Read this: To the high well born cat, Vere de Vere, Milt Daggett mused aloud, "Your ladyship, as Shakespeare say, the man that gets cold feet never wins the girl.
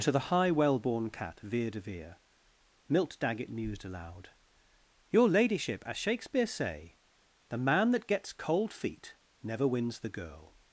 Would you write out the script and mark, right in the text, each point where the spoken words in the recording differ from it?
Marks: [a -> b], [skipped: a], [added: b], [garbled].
To the high well born cat, Vere de Vere, Milt Daggett mused aloud, "Your ladyship, as Shakespeare say, the man that gets cold feet never wins the girl.